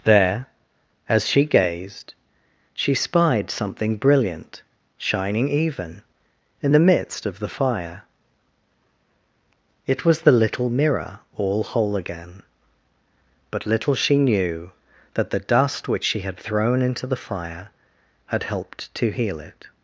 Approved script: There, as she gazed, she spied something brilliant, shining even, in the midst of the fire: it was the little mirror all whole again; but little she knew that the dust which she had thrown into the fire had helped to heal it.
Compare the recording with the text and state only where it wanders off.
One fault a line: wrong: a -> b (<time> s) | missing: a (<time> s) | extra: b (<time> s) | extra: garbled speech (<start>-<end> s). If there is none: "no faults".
no faults